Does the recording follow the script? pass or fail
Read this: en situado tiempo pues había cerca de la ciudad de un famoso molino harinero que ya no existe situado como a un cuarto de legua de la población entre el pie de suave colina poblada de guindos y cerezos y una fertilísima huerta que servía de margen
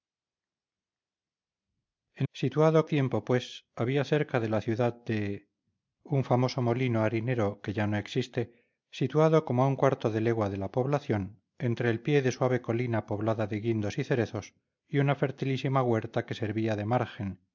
pass